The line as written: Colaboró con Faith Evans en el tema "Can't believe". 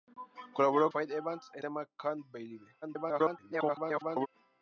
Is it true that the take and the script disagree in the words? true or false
true